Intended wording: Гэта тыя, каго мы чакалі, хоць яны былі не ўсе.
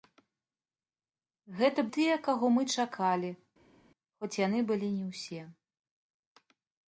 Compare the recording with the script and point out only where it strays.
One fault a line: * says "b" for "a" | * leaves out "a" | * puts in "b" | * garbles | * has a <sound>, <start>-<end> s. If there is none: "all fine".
all fine